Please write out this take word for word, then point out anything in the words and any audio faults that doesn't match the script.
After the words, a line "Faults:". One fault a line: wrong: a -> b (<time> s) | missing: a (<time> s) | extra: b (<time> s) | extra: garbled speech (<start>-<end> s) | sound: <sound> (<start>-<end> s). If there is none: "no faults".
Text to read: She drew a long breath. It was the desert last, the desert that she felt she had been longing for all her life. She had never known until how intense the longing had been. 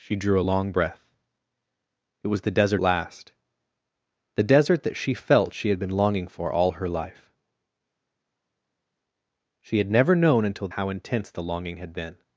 She drew a long breath. It was the desert last, the desert that she felt she had been longing for all her life. She had never known until how intense the longing had been.
Faults:
no faults